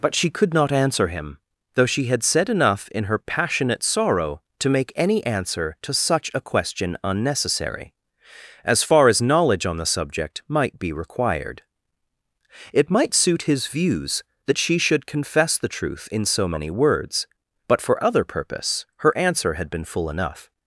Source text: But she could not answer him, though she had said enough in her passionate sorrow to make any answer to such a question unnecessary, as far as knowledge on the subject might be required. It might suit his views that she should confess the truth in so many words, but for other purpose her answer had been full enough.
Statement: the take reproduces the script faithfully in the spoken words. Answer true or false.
true